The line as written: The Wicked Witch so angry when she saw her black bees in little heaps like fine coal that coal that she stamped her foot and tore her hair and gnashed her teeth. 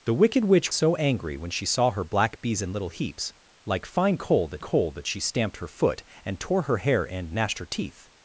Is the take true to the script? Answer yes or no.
yes